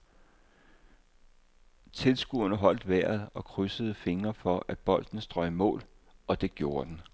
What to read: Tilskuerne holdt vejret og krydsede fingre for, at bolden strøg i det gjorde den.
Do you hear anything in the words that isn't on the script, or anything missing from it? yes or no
yes